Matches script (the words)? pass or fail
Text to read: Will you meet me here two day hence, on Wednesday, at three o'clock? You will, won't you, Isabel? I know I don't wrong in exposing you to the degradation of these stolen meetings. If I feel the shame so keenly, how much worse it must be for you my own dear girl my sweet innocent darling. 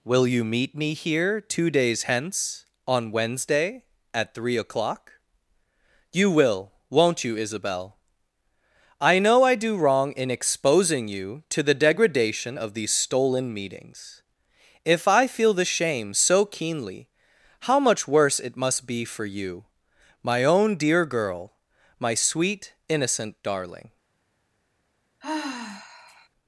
fail